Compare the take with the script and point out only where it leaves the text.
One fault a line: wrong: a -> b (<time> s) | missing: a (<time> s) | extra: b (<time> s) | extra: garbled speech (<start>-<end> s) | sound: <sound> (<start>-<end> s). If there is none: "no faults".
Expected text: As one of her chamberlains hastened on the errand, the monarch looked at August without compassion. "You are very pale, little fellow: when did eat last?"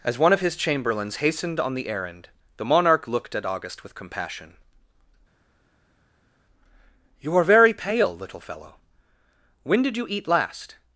wrong: her -> his (0.4 s)
wrong: without -> with (3.8 s)
extra: you (10.0 s)